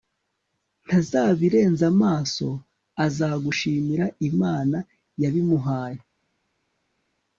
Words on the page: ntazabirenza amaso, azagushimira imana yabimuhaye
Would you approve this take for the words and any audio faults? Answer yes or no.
yes